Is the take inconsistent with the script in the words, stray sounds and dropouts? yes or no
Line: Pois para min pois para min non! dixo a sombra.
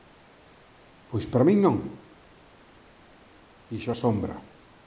yes